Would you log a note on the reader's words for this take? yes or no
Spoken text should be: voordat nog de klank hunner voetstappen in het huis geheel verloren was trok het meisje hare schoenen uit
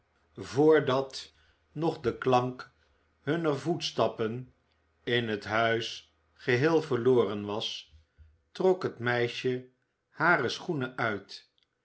no